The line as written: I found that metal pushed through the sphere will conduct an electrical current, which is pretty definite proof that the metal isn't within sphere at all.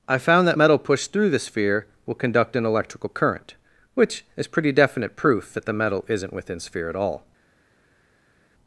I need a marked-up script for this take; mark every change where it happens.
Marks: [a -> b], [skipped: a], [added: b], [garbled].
I found that metal pushed through the sphere will conduct an electrical current, which is pretty definite proof that the metal isn't within sphere at all.